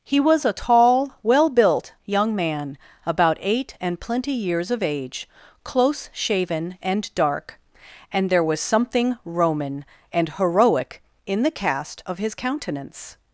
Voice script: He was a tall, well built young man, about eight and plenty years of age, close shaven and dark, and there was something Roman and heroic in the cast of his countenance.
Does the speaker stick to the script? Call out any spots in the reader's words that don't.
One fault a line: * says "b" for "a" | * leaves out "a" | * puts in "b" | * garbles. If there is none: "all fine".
all fine